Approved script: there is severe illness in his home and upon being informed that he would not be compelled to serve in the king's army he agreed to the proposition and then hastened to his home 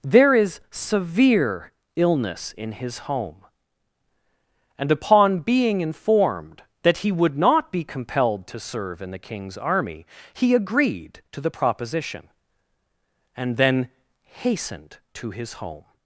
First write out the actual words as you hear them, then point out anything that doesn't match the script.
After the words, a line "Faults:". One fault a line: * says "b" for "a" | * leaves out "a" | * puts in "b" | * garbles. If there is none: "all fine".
there is severe illness in his home and upon being informed that he would not be compelled to serve in the king's army he agreed to the proposition and then hastened to his home
Faults:
all fine